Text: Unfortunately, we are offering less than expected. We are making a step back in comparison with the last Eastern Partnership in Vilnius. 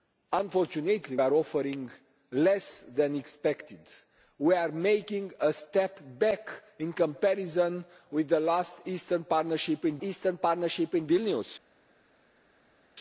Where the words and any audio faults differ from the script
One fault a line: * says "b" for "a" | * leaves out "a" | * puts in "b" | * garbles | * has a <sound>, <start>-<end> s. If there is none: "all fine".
* leaves out "we"
* puts in "Eastern Partnership in"